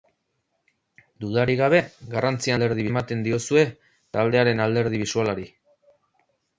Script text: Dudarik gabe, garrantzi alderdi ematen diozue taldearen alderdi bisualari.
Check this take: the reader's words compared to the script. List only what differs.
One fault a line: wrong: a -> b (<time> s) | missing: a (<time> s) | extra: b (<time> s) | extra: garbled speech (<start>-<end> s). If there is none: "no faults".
no faults